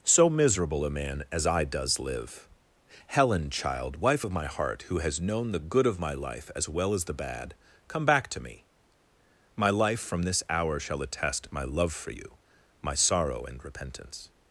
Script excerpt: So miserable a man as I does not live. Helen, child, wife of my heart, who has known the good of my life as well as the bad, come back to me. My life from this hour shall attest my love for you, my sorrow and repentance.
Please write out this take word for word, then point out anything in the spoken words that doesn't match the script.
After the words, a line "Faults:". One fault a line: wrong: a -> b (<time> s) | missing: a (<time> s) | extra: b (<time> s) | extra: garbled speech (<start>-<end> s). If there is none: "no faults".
So miserable a man as I does live. Helen, child, wife of my heart, who has known the good of my life as well as the bad, come back to me. My life from this hour shall attest my love for you, my sorrow and repentance.
Faults:
missing: not (2.0 s)